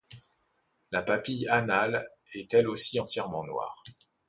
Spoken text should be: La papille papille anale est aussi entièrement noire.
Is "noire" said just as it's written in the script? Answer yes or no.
yes